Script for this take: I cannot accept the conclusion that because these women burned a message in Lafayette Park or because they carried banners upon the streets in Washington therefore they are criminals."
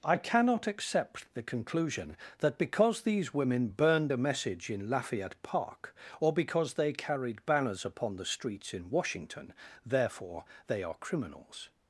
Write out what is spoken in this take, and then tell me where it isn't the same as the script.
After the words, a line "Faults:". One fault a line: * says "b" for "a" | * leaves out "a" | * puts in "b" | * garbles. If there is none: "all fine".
I cannot accept the conclusion that because these women burned a message in Lafayette Park or because they carried banners upon the streets in Washington therefore they are criminals."
Faults:
all fine